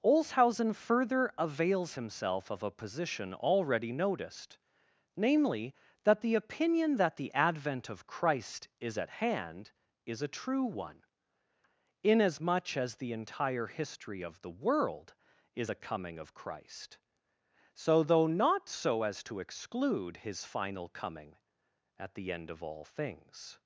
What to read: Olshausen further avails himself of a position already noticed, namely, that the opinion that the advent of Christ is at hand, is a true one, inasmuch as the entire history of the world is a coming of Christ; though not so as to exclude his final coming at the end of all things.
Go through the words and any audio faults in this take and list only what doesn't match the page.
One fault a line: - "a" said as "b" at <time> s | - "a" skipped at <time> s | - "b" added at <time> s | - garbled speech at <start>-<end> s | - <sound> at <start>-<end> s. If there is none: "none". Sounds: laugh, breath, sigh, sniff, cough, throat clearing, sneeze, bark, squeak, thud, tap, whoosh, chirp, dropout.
- "so" added at 17.7 s